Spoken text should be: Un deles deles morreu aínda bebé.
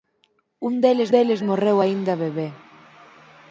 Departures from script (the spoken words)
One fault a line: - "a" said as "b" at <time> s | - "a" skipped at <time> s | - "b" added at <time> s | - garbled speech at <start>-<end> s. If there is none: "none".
none